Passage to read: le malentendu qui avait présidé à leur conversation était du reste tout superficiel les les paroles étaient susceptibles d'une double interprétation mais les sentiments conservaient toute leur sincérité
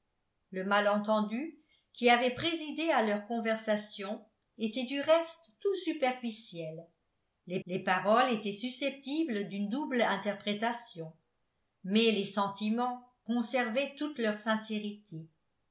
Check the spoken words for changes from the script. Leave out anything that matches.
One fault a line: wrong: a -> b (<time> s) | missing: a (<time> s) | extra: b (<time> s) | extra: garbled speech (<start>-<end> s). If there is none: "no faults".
no faults